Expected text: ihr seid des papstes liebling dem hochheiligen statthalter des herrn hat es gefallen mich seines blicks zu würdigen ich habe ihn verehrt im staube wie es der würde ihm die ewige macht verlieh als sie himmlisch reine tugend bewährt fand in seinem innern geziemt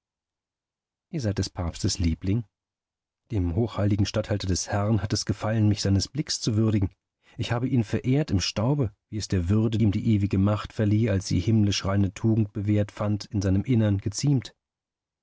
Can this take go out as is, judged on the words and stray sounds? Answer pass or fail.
pass